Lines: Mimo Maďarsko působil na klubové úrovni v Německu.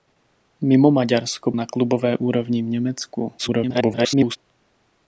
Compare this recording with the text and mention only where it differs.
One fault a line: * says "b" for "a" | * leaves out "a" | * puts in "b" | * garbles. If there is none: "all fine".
* leaves out "působil"
* garbles